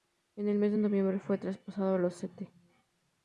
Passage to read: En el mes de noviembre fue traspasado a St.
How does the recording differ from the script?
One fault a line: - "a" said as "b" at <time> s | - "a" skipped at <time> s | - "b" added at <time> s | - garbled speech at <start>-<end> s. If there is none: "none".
- "los" added at 2.0 s